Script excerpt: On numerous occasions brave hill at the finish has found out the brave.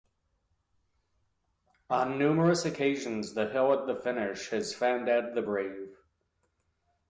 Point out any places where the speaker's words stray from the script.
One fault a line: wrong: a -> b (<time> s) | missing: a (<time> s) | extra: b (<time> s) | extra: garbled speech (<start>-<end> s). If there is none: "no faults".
wrong: brave -> the (3.4 s)